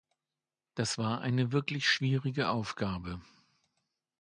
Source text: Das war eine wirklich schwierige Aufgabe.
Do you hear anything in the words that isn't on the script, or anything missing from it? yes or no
no